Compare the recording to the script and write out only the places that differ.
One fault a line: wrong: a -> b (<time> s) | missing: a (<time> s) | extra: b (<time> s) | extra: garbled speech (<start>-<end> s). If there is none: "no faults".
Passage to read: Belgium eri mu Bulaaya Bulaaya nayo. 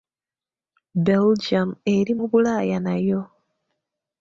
missing: Bulaaya (2.8 s)